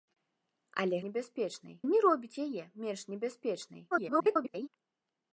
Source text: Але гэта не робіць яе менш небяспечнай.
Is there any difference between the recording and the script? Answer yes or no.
yes